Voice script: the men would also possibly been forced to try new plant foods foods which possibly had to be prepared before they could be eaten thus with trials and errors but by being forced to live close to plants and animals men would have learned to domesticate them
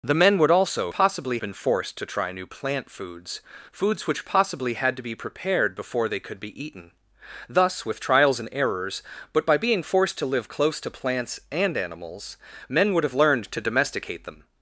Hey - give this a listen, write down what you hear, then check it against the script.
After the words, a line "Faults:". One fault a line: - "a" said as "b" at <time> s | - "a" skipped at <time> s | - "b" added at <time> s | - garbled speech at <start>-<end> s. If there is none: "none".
the men would also possibly been forced to try new plant foods foods which possibly had to be prepared before they could be eaten thus with trials and errors but by being forced to live close to plants and animals men would have learned to domesticate them
Faults:
none